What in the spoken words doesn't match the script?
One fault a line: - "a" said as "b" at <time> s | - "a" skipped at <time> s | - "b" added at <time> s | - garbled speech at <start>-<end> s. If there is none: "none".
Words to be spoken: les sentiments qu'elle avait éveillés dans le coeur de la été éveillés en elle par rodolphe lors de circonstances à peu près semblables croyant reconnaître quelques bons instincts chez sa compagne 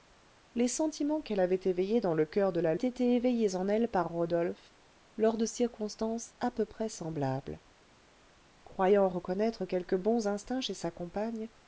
none